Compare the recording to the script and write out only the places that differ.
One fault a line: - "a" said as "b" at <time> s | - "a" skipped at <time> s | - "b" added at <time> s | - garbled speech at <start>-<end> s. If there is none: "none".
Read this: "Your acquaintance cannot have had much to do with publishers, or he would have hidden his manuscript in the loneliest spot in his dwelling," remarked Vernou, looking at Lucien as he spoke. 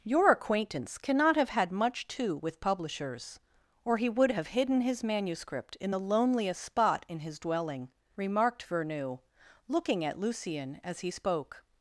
- "do" skipped at 2.4 s